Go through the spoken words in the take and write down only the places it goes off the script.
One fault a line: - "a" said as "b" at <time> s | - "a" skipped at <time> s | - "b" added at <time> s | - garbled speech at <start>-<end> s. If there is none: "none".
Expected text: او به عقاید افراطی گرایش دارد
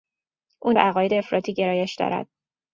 none